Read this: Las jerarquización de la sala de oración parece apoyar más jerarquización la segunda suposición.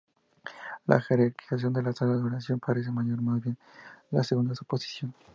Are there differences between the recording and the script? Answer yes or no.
yes